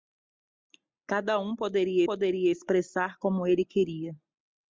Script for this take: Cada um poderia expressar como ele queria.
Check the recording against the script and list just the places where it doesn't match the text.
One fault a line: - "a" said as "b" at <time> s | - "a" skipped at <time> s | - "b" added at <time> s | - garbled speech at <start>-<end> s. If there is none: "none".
- "poderia" added at 2.0 s